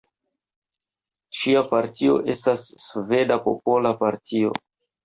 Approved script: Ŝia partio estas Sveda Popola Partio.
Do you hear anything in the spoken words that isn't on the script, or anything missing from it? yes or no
no